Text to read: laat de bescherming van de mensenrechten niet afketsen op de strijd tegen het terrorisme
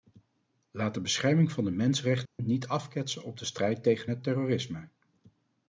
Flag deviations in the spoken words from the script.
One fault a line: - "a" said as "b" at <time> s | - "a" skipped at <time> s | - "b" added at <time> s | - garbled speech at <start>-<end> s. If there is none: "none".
none